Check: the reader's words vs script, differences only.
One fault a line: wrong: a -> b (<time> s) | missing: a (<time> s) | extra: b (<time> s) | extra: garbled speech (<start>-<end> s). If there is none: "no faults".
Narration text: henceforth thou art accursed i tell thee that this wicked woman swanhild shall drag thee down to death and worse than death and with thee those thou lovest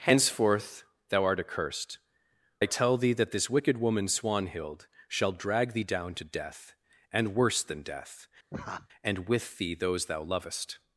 no faults